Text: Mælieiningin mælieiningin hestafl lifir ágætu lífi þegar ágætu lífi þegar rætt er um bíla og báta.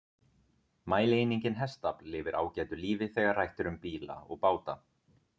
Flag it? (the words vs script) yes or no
yes